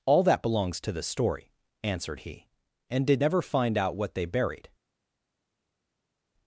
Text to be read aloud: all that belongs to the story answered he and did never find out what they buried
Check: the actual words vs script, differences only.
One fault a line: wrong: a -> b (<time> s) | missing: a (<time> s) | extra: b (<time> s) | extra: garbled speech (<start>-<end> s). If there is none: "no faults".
no faults